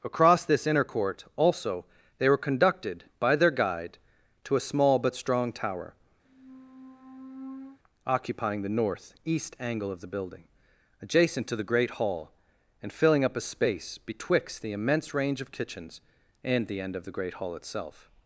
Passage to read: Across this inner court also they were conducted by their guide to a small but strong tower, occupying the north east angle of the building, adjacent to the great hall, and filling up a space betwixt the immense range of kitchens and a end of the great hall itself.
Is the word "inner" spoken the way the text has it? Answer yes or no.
yes